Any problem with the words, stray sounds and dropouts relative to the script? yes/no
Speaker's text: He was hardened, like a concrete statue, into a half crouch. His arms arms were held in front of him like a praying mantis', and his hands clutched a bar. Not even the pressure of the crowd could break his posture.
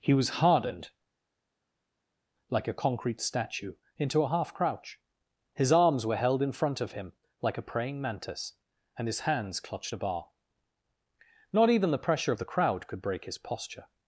yes